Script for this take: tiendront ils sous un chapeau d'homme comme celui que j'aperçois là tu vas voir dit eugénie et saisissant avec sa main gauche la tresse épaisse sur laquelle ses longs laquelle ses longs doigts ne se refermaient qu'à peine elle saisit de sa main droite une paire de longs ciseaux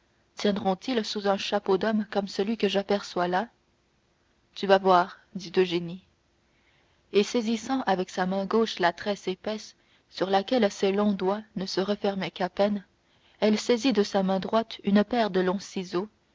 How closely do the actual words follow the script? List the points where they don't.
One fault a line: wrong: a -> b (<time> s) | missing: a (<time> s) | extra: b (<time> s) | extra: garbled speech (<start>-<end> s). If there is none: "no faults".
missing: laquelle ses longs (11.1 s)